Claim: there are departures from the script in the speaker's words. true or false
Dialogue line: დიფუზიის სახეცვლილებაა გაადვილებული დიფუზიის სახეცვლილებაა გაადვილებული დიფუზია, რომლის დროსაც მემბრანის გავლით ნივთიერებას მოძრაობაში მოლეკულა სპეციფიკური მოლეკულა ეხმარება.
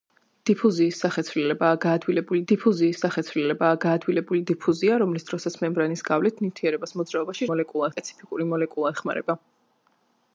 false